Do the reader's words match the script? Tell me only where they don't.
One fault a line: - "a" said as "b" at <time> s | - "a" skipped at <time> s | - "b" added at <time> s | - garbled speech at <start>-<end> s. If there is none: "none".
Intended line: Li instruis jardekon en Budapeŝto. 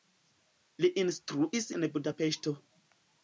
- "jardekon" skipped at 1.7 s